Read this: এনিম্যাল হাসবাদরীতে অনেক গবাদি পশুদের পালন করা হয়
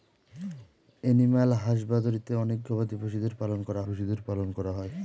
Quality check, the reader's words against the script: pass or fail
fail